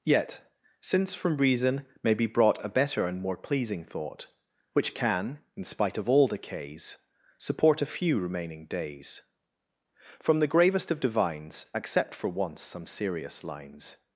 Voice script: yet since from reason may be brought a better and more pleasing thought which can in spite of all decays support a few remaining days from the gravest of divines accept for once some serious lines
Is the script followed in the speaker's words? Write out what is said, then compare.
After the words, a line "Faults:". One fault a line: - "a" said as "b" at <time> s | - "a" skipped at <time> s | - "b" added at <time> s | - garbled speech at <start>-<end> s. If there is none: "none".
yet since from reason may be brought a better and more pleasing thought which can in spite of all decays support a few remaining days from the gravest of divines accept for once some serious lines
Faults:
none